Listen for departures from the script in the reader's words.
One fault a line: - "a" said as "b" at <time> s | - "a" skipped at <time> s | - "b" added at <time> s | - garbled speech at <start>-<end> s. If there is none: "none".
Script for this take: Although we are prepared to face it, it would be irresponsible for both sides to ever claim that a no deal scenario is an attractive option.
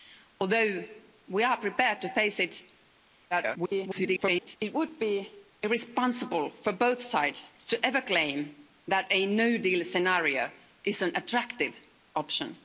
- garbled speech at 3.3-4.6 s